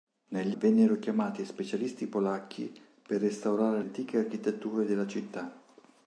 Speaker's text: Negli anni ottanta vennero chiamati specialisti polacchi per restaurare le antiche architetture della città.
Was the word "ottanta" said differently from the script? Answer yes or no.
yes